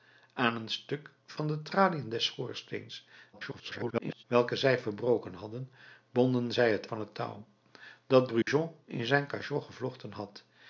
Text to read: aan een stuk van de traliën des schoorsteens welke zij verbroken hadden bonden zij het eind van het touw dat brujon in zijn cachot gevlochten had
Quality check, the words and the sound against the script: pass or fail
fail